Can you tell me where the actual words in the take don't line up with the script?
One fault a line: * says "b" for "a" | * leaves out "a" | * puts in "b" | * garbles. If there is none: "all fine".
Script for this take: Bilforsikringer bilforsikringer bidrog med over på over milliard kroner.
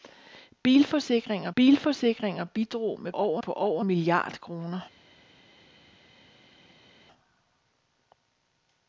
all fine